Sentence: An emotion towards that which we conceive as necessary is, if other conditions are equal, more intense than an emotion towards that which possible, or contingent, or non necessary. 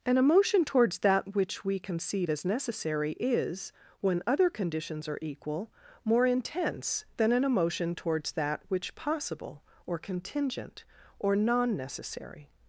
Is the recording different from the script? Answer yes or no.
yes